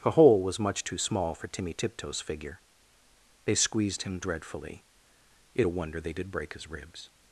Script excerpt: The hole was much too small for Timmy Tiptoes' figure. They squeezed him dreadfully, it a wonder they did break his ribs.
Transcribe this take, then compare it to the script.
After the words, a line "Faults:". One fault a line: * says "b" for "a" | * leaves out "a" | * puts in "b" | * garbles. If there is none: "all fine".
The hole was much too small for Timmy Tiptoes' figure. They squeezed him dreadfully, it a wonder they did break his ribs.
Faults:
all fine